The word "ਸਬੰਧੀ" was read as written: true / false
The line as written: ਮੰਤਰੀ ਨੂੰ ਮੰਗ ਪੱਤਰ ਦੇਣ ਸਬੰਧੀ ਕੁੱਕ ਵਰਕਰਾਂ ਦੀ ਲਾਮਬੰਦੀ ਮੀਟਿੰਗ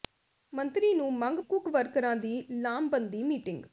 false